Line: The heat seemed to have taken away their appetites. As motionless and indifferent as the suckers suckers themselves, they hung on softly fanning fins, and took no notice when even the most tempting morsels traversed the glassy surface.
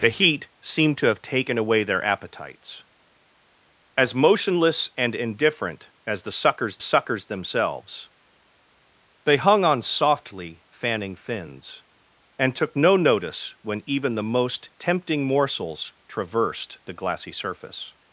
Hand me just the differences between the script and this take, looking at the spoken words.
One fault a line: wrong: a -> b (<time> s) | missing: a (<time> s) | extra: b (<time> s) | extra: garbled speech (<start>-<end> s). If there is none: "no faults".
no faults